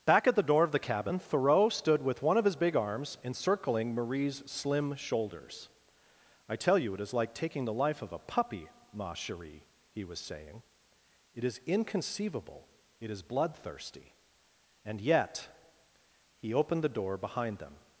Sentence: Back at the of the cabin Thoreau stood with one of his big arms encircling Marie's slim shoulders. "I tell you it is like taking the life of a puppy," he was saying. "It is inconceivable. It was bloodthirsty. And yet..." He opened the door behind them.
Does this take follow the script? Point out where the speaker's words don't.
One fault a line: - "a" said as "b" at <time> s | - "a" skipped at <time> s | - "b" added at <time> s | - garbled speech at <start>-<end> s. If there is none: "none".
- "door" added at 0.4 s
- "ma cherie" added at 8.9 s
- "was" said as "is" at 13.1 s